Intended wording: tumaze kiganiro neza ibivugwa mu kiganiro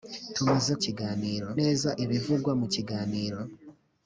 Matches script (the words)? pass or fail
pass